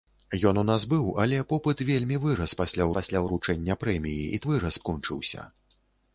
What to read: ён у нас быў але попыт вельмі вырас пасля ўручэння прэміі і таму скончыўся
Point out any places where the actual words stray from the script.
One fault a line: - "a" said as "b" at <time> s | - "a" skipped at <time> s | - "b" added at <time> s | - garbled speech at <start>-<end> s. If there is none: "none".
- "пасля" added at 3.0 s
- "таму" said as "вырас" at 4.5 s